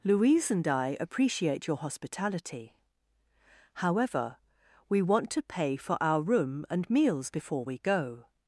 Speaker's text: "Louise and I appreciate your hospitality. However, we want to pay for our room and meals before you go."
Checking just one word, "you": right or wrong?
wrong